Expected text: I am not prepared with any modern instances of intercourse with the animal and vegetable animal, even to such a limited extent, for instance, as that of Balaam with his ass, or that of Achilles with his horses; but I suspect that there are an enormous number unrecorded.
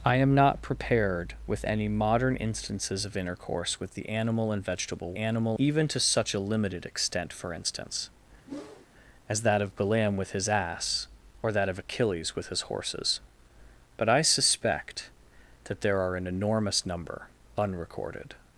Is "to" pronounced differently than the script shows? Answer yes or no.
no